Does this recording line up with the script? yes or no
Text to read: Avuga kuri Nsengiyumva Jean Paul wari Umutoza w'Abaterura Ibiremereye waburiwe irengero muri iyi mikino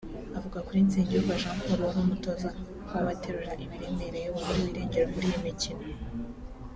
yes